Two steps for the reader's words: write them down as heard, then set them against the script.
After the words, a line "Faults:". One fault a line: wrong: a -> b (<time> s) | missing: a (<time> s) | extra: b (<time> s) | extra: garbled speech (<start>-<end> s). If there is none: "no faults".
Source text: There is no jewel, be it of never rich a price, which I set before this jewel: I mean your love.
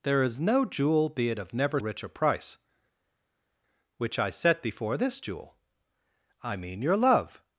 There is no jewel, be it of never rich a price, which I set before this jewel: I mean your love.
Faults:
no faults